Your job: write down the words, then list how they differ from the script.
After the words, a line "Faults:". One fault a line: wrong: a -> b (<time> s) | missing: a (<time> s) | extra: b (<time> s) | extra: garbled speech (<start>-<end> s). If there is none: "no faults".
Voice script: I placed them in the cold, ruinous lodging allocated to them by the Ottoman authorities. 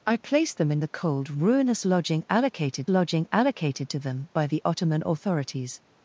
I placed them in the cold, ruinous lodging allocated lodging allocated to them by the Ottoman authorities.
Faults:
extra: lodging allocated (2.9 s)